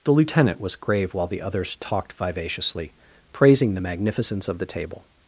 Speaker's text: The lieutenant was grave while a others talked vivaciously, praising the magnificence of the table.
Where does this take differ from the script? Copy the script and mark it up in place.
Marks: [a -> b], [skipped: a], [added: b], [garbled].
The lieutenant was grave while [a -> the] others talked vivaciously, praising the magnificence of the table.